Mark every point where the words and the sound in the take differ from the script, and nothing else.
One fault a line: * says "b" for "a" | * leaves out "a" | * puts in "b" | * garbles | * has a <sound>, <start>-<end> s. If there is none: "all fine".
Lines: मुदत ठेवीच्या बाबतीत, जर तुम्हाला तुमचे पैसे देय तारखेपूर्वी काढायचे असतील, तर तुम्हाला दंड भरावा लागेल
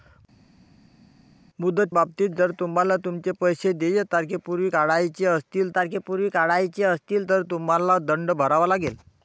* leaves out "ठेवीच्या"
* puts in "तारखेपूर्वी काढायचे असतील"